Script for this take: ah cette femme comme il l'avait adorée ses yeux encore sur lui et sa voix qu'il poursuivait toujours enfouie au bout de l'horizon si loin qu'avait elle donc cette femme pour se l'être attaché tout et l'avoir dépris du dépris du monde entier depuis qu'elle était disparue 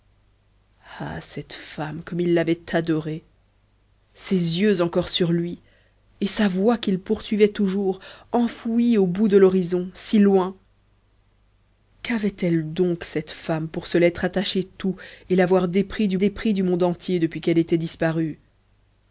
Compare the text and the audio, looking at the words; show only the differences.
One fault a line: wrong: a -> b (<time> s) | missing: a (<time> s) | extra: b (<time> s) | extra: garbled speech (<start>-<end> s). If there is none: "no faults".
no faults